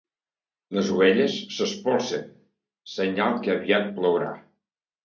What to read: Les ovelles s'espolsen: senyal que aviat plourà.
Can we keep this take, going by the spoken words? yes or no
yes